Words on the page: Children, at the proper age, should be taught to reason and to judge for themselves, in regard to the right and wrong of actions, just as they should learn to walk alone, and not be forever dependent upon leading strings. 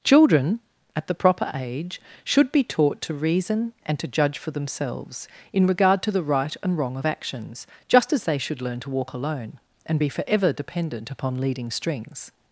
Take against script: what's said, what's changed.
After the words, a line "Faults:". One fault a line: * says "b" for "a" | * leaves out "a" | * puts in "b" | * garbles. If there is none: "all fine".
Children, at the proper age, should be taught to reason and to judge for themselves, in regard to the right and wrong of actions, just as they should learn to walk alone, and be forever dependent upon leading strings.
Faults:
* leaves out "not"